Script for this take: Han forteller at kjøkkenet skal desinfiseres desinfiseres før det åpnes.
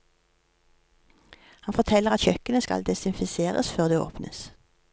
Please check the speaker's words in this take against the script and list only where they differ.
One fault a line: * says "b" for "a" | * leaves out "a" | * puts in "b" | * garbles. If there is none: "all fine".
* leaves out "desinfiseres"